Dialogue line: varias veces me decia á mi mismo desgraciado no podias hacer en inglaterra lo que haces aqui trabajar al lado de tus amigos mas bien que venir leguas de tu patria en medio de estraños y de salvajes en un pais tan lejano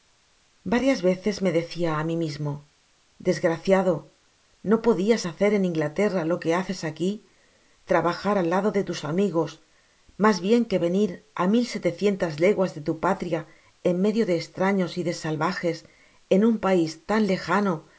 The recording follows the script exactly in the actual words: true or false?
false